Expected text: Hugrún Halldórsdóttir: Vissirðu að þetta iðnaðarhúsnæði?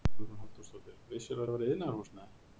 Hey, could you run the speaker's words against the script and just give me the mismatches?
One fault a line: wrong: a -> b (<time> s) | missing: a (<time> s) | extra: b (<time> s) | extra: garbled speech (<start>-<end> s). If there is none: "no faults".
extra: væri (1.6 s)